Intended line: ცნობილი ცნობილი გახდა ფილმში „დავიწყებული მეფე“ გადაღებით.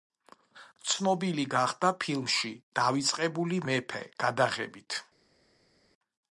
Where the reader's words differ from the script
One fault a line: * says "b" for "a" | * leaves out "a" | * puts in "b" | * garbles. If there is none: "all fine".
* leaves out "ცნობილი"